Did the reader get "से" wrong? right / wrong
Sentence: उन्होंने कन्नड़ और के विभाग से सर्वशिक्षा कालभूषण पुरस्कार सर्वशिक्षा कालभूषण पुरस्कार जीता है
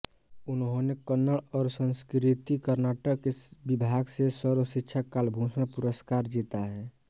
right